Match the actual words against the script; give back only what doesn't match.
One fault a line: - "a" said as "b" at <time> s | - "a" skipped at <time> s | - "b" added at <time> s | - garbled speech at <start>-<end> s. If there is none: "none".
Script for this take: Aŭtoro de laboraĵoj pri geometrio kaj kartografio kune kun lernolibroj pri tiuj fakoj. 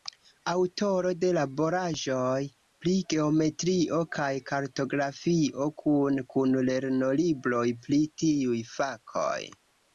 none